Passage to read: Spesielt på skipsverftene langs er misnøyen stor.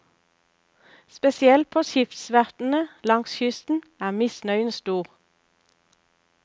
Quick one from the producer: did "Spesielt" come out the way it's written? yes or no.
yes